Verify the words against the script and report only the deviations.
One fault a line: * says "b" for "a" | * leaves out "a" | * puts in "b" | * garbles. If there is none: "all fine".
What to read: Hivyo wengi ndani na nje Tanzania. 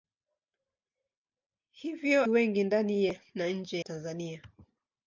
all fine